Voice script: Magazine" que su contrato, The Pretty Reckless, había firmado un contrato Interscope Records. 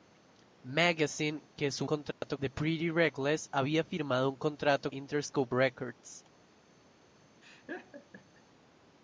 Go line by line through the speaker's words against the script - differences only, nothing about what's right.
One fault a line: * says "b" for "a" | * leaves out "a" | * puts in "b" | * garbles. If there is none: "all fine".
all fine